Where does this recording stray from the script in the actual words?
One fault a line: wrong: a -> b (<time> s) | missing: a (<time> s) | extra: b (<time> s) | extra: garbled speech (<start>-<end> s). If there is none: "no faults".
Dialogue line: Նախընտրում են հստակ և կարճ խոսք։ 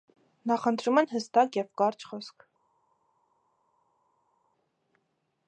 no faults